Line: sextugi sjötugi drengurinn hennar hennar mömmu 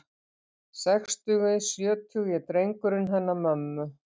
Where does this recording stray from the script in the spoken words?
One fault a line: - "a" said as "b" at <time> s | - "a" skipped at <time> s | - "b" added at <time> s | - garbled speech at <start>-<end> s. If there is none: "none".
- "hennar" skipped at 3.4 s